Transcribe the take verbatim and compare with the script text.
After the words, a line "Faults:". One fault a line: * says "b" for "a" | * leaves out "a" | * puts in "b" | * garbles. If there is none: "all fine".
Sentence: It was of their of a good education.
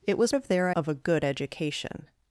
It was of their of a good education.
Faults:
all fine